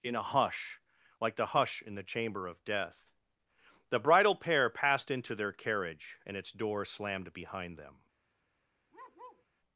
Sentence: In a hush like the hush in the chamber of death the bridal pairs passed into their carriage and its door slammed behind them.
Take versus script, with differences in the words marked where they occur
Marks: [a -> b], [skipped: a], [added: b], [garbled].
In a hush like the hush in the chamber of death the bridal [pairs -> pair] passed into their carriage and its door slammed behind them.